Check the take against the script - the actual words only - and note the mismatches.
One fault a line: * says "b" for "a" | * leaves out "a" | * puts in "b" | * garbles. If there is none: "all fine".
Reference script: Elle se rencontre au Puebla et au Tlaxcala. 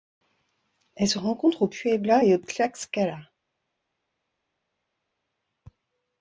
all fine